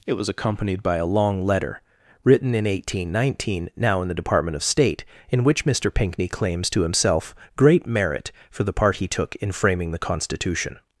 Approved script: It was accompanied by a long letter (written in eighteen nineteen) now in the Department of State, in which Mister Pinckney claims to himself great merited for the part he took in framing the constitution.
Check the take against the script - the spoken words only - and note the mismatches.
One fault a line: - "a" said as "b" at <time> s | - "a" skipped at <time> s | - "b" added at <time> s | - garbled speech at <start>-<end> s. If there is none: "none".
- "merited" said as "merit" at 7.8 s